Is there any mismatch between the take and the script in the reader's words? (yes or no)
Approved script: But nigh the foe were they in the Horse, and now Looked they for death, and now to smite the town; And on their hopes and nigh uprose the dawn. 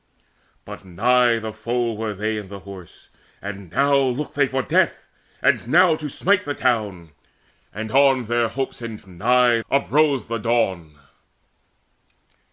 no